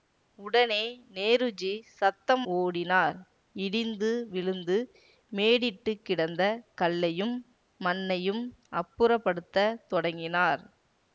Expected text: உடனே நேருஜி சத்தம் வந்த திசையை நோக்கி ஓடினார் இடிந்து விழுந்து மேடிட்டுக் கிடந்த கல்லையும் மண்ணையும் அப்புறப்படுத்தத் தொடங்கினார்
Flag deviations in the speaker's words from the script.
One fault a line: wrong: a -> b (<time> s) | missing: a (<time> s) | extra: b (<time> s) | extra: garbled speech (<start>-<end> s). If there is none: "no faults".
missing: வந்த திசையை நோக்கி (2.5 s)